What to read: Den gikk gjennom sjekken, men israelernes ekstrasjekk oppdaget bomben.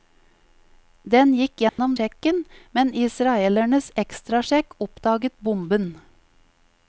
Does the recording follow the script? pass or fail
pass